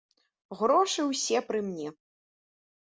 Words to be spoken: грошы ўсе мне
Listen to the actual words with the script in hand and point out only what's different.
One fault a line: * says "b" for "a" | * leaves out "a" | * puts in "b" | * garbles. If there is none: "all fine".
* puts in "пры"